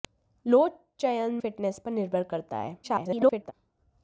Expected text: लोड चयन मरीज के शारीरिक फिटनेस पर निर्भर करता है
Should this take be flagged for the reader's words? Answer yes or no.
yes